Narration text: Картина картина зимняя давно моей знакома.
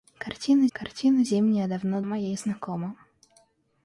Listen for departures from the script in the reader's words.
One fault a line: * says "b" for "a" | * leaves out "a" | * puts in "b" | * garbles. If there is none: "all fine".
all fine